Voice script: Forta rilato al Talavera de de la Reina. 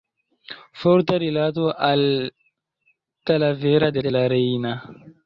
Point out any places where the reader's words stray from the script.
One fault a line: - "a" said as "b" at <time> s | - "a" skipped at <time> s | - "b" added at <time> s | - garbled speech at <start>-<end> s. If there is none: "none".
none